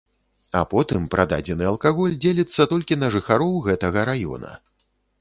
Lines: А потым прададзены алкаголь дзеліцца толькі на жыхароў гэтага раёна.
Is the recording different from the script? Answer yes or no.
no